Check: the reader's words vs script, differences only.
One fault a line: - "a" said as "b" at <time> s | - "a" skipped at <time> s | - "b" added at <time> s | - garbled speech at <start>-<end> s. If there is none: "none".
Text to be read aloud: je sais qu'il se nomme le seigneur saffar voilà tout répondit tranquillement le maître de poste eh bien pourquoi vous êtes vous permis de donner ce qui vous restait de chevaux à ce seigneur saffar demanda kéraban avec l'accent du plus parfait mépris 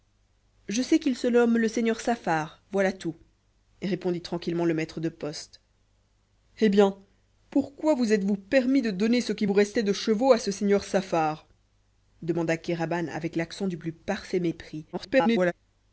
- garbled speech at 14.9-15.5 s